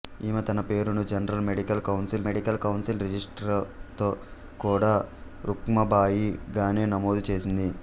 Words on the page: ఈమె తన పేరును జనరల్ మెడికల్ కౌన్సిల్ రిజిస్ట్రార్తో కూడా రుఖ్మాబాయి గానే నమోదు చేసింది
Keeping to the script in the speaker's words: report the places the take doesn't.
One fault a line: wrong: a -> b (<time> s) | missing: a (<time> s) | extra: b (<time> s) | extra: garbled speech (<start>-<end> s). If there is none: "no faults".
extra: మెడికల్ కౌన్సిల్ (2.3 s)